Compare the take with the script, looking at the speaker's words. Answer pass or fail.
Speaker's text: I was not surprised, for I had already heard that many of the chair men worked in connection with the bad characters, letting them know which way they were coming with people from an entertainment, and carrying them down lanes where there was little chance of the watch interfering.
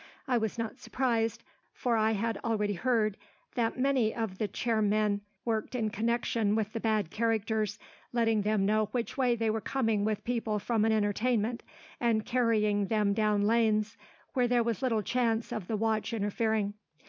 pass